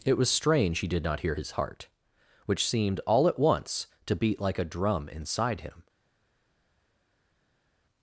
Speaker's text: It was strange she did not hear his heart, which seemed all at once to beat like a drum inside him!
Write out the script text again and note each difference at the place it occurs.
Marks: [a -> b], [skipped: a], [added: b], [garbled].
It was strange [she -> he] did not hear his heart, which seemed all at once to beat like a drum inside him!